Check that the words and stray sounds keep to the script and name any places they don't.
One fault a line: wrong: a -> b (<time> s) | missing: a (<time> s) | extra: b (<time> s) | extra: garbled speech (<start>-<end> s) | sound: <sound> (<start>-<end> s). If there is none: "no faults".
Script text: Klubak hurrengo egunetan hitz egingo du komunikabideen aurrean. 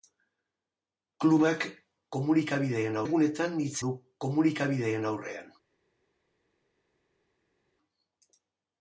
wrong: hurrengo -> komunikabideen (2.2 s)
missing: egingo (3.8 s)